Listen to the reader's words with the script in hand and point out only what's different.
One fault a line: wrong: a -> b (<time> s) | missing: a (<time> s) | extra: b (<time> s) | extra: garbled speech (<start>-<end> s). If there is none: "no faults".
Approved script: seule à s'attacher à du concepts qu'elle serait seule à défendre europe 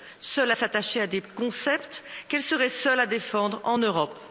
wrong: du -> des (1.1 s)
extra: en (3.6 s)